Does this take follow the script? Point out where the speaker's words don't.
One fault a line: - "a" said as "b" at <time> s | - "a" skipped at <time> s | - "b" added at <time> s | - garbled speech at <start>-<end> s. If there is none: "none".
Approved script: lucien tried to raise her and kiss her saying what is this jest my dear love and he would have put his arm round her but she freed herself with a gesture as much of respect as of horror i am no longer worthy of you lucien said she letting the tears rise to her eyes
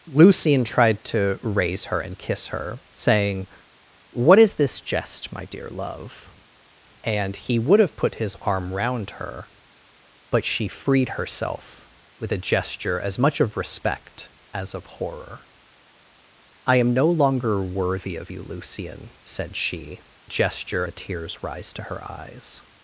- "letting" said as "gesture" at 20.2 s